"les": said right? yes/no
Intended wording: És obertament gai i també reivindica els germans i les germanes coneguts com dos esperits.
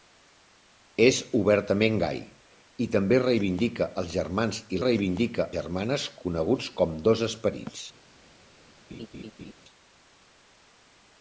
no